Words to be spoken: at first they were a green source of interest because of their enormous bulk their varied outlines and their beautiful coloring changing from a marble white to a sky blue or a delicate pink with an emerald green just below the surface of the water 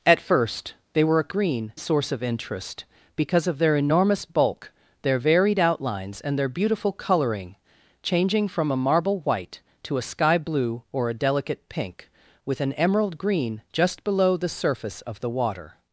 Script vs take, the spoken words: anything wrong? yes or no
no